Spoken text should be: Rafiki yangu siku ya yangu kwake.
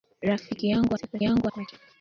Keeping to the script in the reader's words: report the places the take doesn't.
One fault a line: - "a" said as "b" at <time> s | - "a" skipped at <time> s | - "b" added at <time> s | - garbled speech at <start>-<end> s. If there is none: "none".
none